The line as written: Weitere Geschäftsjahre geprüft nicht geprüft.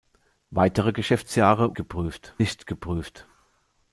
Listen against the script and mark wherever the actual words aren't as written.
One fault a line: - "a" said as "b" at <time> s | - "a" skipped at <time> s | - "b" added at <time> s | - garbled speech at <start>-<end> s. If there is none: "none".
none